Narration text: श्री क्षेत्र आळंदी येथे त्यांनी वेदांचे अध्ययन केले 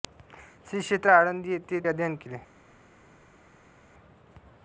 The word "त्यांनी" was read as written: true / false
false